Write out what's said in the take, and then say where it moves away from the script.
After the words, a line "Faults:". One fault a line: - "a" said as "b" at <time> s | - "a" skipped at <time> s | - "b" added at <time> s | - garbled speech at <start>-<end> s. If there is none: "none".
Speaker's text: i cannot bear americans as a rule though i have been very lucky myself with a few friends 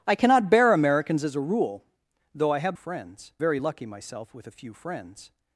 i cannot bear americans as a rule though i have friends very lucky myself with a few friends
Faults:
- "been" said as "friends" at 2.7 s